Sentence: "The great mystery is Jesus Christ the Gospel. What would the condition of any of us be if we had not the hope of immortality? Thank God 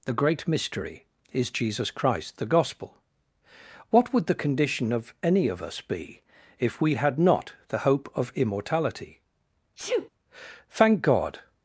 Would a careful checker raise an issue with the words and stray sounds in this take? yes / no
yes